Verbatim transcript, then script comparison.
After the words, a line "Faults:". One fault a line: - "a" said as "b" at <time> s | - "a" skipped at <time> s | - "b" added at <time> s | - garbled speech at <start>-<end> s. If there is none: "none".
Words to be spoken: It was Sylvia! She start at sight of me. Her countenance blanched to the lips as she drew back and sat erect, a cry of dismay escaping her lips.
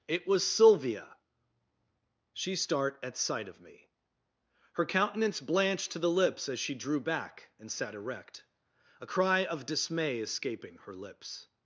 It was Sylvia! She start at sight of me. Her countenance blanched to the lips as she drew back and sat erect, a cry of dismay escaping her lips.
Faults:
none